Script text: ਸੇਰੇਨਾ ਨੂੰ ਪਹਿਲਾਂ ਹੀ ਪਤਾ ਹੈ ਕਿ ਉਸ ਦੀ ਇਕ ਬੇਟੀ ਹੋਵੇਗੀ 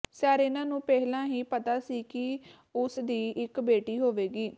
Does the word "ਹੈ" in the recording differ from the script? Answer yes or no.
yes